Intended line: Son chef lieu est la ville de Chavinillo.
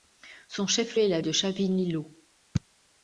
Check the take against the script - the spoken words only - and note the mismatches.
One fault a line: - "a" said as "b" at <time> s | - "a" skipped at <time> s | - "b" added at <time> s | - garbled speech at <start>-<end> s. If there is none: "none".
- "lieu" skipped at 1.0 s
- "ville" skipped at 1.2 s